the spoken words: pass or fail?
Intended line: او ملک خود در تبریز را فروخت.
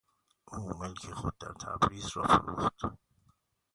pass